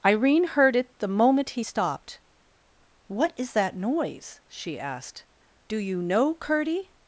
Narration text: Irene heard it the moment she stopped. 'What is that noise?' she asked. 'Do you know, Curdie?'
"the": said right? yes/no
yes